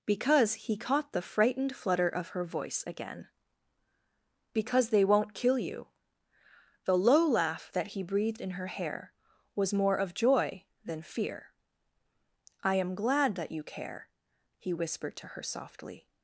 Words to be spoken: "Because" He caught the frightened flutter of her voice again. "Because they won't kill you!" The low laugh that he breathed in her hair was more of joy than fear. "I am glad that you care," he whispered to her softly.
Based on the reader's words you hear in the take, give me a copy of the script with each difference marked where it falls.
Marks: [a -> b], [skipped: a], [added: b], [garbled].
"Because" He caught the frightened flutter of her voice again. "Because they won't kill you!" The low laugh that he breathed in her hair was more of joy than fear. "I am glad that you care," he whispered to her softly.